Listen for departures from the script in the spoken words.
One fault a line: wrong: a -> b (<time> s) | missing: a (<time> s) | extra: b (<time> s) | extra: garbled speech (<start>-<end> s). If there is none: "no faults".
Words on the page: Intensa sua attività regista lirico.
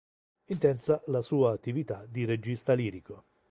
extra: la (1.1 s)
extra: di (2.1 s)